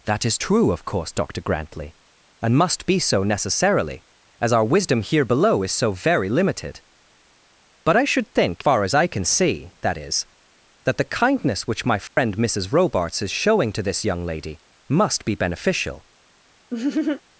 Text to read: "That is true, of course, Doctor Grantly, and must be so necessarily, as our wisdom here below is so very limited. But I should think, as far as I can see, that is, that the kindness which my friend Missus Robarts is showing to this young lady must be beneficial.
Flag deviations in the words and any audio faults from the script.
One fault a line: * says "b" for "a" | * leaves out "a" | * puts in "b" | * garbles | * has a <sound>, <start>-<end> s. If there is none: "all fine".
* leaves out "as"
* has a dropout, 12.1-12.2 s
* has a laugh, 16.7-17.2 s